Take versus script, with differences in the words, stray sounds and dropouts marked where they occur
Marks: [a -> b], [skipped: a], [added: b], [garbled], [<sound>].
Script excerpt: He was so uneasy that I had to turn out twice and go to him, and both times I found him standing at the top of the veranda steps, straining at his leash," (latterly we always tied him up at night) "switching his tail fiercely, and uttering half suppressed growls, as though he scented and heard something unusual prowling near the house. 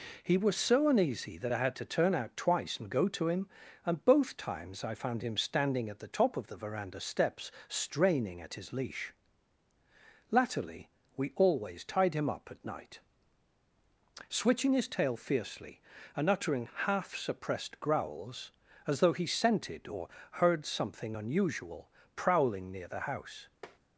He was so uneasy that I had to turn out twice and go to him, and both times I found him standing at the top of the veranda steps, straining at his leash," (latterly we always tied him up at night) "switching his tail fiercely, and uttering half suppressed growls, as though he scented [and -> or] heard something unusual prowling near the house. [tap]